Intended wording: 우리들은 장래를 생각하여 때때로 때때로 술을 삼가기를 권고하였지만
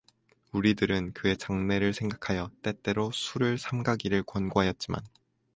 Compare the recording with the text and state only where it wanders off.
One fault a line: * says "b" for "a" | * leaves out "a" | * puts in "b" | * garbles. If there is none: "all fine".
* puts in "그의"
* leaves out "때때로"